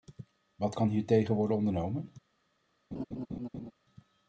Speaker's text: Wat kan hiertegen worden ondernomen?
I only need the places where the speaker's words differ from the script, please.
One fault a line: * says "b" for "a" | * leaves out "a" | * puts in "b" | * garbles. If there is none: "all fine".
all fine